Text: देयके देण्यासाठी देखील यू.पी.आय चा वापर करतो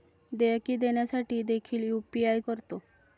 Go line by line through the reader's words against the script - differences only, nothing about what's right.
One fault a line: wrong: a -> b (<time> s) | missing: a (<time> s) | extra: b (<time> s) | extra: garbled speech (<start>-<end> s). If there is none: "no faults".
missing: चा वापर (2.4 s)